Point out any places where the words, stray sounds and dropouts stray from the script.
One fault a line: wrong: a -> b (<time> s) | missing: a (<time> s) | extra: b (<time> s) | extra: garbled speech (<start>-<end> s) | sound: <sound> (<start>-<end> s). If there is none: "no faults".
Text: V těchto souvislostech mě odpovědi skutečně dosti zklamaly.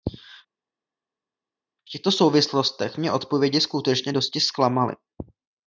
no faults